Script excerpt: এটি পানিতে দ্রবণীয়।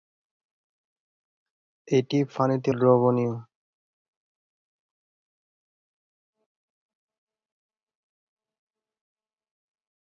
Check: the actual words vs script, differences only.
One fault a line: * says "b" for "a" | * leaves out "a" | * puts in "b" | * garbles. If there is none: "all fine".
all fine